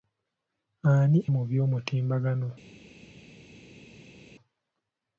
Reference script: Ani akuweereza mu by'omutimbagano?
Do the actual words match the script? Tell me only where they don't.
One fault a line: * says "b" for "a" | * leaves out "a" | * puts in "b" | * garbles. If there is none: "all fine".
* leaves out "akuweereza"